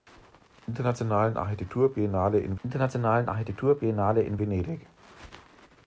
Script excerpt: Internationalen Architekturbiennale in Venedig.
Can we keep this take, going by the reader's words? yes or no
no